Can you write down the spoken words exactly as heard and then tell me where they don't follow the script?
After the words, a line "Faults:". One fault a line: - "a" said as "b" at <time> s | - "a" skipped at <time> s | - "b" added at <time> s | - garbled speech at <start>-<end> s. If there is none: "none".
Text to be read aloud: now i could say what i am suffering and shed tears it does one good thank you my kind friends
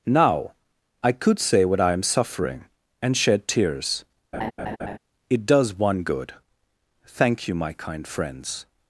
now i could say what i am suffering and shed tears it does one good thank you my kind friends
Faults:
none